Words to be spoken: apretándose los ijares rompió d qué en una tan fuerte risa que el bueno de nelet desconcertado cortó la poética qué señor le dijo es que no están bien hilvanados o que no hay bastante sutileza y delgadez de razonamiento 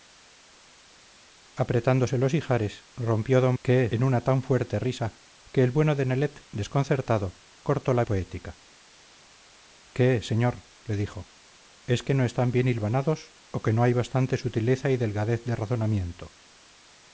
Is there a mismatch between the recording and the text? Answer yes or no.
no